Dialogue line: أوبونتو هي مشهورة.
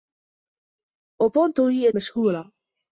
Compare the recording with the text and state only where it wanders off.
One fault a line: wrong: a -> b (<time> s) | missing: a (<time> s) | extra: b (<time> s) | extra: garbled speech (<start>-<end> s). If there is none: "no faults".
no faults